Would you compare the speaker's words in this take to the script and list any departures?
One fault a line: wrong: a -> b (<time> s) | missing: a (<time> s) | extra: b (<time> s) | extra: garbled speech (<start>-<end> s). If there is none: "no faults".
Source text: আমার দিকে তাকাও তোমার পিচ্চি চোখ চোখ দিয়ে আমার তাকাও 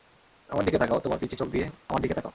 missing: চোখ (1.5 s)
extra: দিকে (2.0 s)